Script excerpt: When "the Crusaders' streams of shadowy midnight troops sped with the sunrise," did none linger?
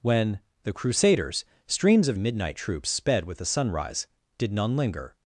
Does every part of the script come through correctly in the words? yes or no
no